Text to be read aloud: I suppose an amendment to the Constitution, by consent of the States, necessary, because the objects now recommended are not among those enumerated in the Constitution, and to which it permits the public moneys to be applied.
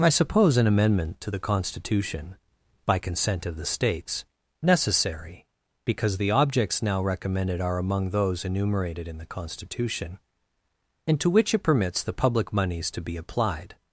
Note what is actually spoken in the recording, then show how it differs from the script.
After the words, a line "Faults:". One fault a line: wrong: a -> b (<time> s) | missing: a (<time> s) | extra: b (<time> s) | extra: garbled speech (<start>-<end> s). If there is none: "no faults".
I suppose an amendment to the Constitution, by consent of the States, necessary, because the objects now recommended are among those enumerated in the Constitution, and to which it permits the public moneys to be applied.
Faults:
missing: not (7.8 s)